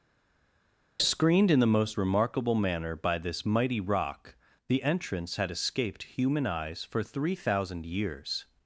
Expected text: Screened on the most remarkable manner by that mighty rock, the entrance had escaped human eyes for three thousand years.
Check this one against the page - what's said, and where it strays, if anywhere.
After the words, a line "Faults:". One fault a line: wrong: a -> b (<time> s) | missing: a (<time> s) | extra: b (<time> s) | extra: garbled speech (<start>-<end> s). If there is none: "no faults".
Screened in the most remarkable manner by this mighty rock, the entrance had escaped human eyes for three thousand years.
Faults:
wrong: on -> in (1.5 s)
wrong: that -> this (3.2 s)